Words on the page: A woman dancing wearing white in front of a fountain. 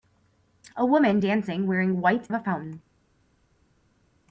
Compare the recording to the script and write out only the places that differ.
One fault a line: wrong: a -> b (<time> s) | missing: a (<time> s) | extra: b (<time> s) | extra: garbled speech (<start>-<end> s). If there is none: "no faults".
missing: in front (2.3 s)